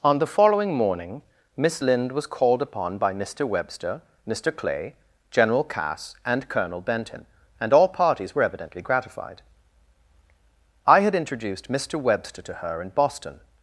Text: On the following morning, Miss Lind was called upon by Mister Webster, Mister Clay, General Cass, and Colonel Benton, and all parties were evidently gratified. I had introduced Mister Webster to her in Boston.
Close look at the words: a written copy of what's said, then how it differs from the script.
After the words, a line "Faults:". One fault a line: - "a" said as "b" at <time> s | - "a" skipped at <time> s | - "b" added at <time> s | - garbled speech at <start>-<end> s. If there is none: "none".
On the following morning, Miss Lind was called upon by Mister Webster, Mister Clay, General Cass, and Colonel Benton, and all parties were evidently gratified. I had introduced Mister Webster to her in Boston.
Faults:
none